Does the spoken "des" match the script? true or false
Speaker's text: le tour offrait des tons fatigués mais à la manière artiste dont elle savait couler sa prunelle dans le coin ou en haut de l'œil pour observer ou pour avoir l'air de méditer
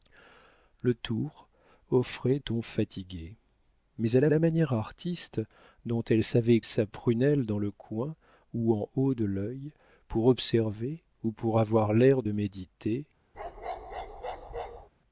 false